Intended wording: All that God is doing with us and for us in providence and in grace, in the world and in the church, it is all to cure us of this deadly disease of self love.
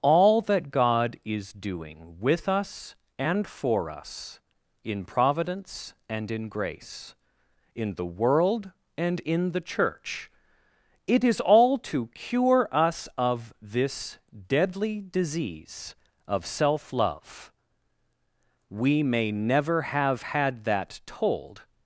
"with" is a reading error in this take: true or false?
false